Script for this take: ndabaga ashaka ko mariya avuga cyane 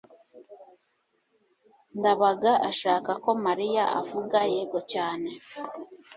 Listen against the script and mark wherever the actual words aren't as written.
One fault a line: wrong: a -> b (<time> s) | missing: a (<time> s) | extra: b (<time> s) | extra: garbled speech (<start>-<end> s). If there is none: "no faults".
extra: yego (4.5 s)